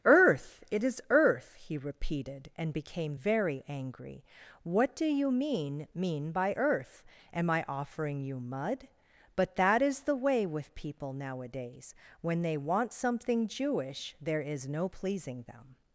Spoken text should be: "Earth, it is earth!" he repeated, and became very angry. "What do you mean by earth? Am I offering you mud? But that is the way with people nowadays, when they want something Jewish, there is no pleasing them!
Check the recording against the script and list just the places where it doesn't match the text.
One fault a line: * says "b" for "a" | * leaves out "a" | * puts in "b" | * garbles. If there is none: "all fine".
* puts in "mean"